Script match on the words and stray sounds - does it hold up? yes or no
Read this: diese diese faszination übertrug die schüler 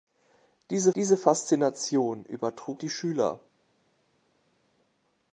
yes